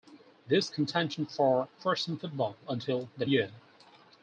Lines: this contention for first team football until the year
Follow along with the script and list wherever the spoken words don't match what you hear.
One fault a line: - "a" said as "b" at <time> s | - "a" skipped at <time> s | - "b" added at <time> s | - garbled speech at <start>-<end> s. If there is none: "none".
none